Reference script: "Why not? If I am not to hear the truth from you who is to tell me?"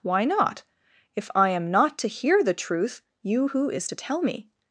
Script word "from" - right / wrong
wrong